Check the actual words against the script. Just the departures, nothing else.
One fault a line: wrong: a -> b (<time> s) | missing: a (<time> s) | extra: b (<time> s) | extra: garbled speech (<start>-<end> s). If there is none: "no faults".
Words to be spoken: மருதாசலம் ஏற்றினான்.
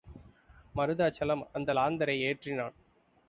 extra: அந்த லாந்தரை (1.5 s)